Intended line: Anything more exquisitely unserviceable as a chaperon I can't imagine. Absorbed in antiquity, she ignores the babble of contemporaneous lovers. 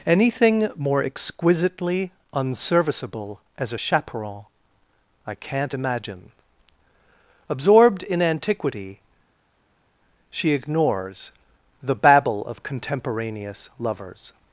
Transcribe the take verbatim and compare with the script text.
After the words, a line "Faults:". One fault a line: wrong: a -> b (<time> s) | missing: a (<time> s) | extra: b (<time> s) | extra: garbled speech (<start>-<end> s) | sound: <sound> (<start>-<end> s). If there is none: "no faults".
Anything more exquisitely unserviceable as a chaperon I can't imagine. Absorbed in antiquity, she ignores the babble of contemporaneous lovers.
Faults:
no faults